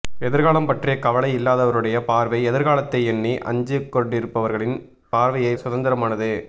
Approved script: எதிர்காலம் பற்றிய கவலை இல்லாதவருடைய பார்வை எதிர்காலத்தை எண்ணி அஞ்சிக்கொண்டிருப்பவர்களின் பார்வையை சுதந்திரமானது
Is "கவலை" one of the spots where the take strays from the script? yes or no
no